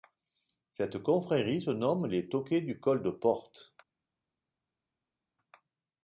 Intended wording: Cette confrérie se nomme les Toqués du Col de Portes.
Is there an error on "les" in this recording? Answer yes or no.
no